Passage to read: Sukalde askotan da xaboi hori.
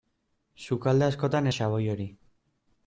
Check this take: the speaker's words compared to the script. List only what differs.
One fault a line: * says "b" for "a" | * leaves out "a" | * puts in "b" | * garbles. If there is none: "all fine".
all fine